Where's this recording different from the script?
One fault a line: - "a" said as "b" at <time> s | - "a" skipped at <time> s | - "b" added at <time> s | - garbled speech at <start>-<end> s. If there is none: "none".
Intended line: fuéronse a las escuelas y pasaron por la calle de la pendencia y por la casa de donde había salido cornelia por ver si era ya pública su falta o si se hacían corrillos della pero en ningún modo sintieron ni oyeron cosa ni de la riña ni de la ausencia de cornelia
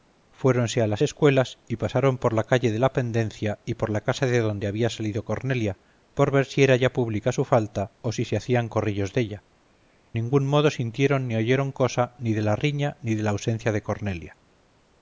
- "pero en" skipped at 9.4 s